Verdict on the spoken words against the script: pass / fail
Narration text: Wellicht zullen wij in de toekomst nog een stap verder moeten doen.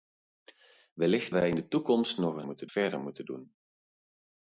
fail